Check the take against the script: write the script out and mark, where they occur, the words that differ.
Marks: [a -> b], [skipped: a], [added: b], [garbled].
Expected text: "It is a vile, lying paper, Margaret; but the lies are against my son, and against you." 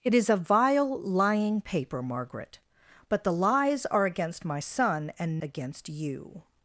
"It is a vile, lying paper, Margaret; but the lies are against my son, and against you."